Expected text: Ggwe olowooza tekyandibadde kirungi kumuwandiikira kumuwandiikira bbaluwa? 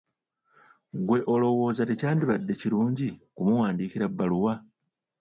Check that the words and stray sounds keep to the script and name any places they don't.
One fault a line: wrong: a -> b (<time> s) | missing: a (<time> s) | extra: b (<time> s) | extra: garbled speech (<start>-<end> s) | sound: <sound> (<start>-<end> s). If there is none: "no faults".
missing: kumuwandiikira (4.1 s)